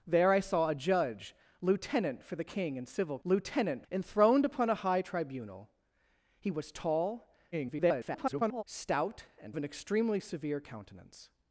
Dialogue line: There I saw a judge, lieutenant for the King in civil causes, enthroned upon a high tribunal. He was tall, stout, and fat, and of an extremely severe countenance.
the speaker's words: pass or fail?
fail